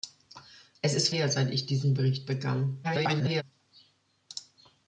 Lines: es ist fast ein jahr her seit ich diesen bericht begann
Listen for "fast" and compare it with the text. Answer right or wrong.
wrong